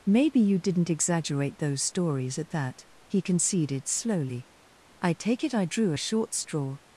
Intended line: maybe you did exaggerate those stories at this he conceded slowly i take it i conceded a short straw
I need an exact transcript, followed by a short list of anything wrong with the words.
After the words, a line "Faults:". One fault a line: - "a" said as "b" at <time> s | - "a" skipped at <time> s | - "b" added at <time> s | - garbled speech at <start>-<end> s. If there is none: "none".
maybe you didn't exaggerate those stories at that he conceded slowly i take it i drew a short straw
Faults:
- "did" said as "didn't" at 0.6 s
- "this" said as "that" at 2.5 s
- "conceded" said as "drew" at 5.7 s